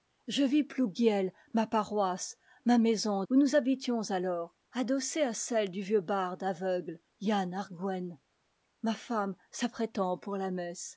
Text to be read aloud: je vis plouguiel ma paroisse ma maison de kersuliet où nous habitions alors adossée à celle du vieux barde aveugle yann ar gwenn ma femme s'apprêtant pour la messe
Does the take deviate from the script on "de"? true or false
true